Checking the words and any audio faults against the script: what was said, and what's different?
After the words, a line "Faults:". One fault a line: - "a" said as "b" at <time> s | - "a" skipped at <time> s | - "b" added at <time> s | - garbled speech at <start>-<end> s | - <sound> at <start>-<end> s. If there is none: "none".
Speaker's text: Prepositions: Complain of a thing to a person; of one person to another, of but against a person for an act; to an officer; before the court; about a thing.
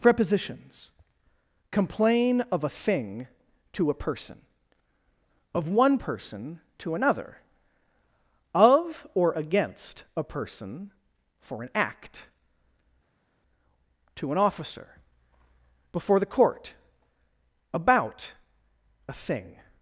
Prepositions: Complain of a thing to a person; of one person to another, of or against a person for an act; to an officer; before the court; about a thing.
Faults:
- "but" said as "or" at 9.1 s